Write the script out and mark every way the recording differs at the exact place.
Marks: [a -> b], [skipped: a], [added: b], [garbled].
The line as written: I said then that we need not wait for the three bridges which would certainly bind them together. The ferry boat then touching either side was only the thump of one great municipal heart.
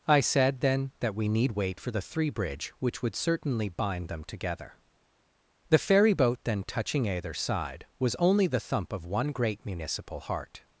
I said then that we need [skipped: not] wait for the three [bridges -> bridge] which would certainly bind them together. The ferry boat then touching either side was only the thump of one great municipal heart.